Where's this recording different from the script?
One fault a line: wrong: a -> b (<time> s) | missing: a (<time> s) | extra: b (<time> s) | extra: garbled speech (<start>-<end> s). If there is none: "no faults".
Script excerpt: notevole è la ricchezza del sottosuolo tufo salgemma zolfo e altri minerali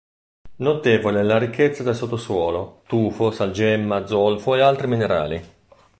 no faults